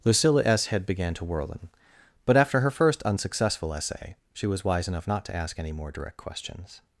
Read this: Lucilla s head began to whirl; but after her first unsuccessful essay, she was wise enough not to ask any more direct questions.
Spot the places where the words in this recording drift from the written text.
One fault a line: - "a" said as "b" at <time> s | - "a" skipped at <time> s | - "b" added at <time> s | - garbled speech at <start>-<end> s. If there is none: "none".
- "whirl" said as "whirling" at 1.2 s